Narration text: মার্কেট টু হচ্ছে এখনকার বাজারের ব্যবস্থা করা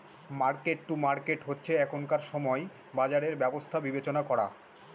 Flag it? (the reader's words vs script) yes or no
yes